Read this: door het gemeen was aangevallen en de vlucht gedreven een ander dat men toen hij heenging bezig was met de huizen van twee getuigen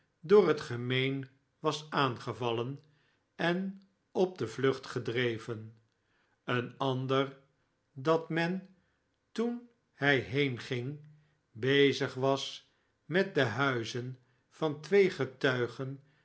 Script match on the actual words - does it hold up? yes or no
no